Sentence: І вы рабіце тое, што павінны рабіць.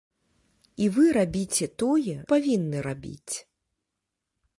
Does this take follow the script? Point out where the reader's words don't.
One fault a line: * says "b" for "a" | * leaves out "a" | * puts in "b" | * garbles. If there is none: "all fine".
* leaves out "што"